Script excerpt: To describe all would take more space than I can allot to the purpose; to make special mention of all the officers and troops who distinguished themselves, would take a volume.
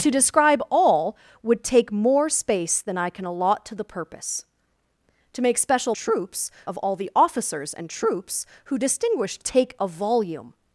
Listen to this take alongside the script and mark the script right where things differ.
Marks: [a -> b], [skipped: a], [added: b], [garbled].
To describe all would take more space than I can allot to the purpose; to make special [mention -> troops] of all the officers and troops who distinguished [skipped: themselves, would] take a volume.